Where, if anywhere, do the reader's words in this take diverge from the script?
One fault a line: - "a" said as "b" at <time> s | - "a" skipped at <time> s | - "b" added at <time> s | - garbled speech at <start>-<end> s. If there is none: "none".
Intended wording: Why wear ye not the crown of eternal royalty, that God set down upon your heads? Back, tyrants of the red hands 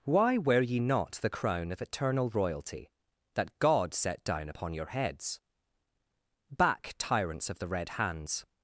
none